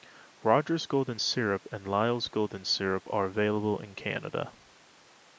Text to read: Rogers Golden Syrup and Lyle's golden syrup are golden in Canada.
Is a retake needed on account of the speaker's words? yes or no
yes